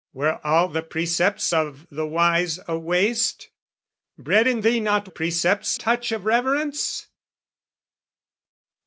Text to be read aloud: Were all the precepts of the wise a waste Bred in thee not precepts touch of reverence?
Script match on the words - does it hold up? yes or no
yes